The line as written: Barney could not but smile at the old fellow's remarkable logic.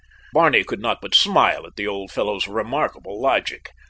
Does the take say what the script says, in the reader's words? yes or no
yes